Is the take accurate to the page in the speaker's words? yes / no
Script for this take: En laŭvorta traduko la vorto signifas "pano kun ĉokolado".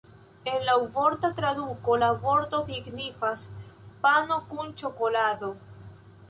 yes